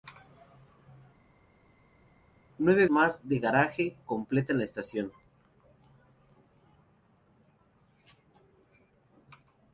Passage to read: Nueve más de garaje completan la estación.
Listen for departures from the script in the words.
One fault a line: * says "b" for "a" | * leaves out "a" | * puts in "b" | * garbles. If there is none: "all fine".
all fine